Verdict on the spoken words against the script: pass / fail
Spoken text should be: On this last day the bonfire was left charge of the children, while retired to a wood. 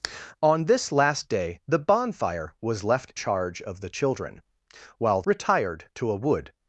pass